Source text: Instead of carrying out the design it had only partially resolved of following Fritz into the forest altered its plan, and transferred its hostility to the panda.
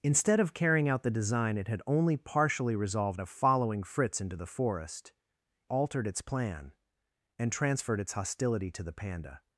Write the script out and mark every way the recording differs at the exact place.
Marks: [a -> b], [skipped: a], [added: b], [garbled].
Instead of carrying out the design it had only partially resolved of following Fritz into the forest altered its plan, and transferred its hostility to the panda.